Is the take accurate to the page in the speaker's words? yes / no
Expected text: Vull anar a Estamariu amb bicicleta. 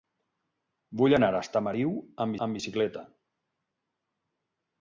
no